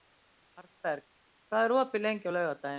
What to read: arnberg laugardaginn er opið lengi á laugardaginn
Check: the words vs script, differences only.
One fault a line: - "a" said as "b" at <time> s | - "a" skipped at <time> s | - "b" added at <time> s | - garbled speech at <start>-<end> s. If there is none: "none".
- "laugardaginn" said as "hvað" at 1.5 s